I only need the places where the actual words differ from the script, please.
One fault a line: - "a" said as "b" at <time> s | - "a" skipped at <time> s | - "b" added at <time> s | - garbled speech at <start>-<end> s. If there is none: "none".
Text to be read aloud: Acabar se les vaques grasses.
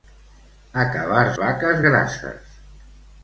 - "se les" skipped at 1.2 s